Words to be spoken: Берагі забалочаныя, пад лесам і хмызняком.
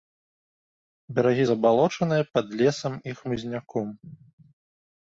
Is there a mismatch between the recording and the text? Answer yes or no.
no